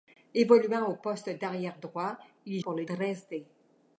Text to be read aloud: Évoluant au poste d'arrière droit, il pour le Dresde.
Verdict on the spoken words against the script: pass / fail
pass